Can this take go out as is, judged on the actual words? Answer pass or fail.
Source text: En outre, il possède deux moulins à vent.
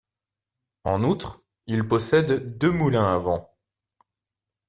pass